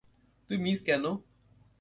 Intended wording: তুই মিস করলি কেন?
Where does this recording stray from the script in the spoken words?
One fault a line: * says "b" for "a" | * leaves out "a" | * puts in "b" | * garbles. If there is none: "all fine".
* leaves out "করলি"